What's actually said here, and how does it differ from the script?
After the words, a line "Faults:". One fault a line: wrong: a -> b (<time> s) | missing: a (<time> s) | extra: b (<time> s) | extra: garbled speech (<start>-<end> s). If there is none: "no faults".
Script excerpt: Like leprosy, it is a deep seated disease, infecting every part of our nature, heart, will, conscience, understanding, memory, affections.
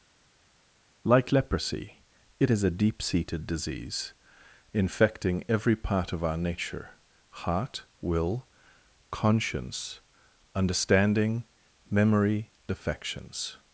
Like leprosy, it is a deep seated disease, infecting every part of our nature, heart, will, conscience, understanding, memory, affections.
Faults:
no faults